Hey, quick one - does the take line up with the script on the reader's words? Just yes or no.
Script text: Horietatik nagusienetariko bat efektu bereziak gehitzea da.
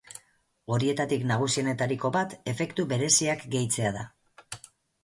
yes